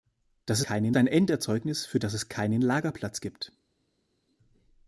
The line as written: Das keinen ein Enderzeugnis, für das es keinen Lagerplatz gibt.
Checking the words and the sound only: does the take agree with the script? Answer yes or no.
yes